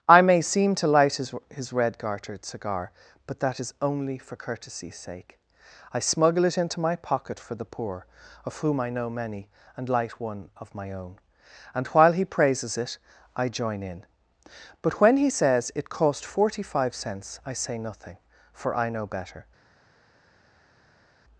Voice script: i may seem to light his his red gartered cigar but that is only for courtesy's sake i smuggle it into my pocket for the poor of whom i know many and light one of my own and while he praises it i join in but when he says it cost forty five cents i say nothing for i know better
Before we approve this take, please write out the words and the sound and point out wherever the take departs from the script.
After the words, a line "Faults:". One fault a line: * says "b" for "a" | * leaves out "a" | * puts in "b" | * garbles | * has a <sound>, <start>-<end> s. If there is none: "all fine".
i may seem to light his his red gartered cigar but that is only for courtesy's sake i smuggle it into my pocket for the poor of whom i know many and light one of my own and while he praises it i join in but when he says it cost forty five cents i say nothing for i know better
Faults:
all fine